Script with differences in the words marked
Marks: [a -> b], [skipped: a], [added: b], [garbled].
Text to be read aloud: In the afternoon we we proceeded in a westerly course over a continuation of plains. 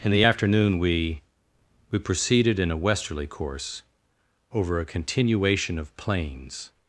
In the afternoon we we proceeded in a westerly course over a continuation of plains.